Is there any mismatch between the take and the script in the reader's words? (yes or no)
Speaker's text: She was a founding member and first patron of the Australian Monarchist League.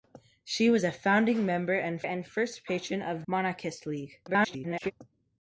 yes